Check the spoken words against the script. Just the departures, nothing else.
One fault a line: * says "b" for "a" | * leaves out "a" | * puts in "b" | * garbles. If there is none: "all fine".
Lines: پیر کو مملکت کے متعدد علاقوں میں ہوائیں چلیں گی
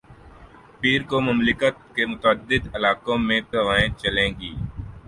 all fine